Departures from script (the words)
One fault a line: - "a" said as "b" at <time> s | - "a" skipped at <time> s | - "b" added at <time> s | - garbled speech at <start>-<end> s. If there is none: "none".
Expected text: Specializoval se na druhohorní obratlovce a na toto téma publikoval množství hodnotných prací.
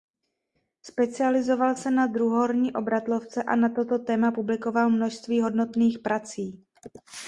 none